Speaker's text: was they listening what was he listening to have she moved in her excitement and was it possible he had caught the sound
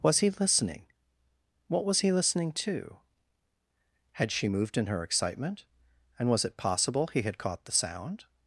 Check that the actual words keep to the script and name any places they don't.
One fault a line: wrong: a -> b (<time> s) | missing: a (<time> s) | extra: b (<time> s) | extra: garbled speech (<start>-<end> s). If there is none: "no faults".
wrong: they -> he (0.2 s)
wrong: have -> had (4.1 s)